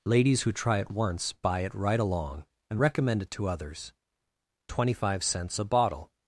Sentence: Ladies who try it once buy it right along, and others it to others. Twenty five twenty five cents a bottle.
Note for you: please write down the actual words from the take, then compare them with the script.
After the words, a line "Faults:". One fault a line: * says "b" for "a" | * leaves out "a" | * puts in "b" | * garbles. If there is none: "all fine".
Ladies who try it once buy it right along, and recommend it to others. Twenty five cents a bottle.
Faults:
* says "recommend" for "others"
* leaves out "twenty five"